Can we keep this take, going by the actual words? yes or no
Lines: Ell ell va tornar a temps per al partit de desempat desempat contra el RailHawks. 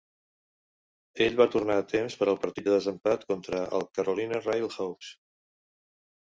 no